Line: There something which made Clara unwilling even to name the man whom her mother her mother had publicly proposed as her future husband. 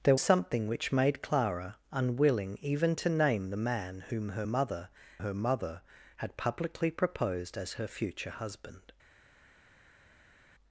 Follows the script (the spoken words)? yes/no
yes